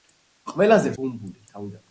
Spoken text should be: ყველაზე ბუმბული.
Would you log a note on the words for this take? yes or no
no